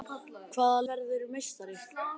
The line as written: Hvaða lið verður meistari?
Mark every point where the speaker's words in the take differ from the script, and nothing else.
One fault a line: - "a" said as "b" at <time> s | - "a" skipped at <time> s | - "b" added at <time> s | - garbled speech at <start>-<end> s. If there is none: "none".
- "lið" skipped at 0.8 s